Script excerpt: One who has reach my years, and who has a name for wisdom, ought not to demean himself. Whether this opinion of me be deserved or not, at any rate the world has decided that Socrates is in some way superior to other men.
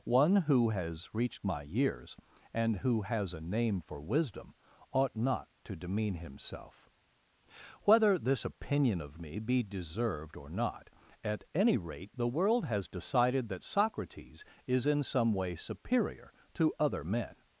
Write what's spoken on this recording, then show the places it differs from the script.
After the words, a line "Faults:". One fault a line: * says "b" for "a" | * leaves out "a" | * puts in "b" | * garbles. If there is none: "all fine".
One who has reached my years, and who has a name for wisdom, ought not to demean himself. Whether this opinion of me be deserved or not, at any rate the world has decided that Socrates is in some way superior to other men.
Faults:
* says "reached" for "reach"